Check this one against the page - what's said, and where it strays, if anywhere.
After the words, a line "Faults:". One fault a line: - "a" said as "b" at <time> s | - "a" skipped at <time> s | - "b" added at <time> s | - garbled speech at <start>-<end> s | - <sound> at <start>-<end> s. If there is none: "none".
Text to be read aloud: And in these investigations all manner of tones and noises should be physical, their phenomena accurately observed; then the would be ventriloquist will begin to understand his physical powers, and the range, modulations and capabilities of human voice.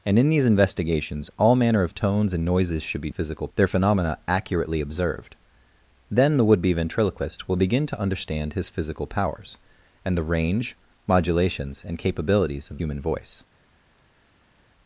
And in these investigations all manner of tones and noises should be physical, their phenomena accurately observed; then the would be ventriloquist will begin to understand his physical powers, and the range, modulations and capabilities of human voice.
Faults:
none